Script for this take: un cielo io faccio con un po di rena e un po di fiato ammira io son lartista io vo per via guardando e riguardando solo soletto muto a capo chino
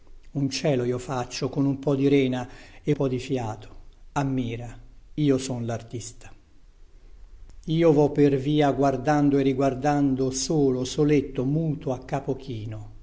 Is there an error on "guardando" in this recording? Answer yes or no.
no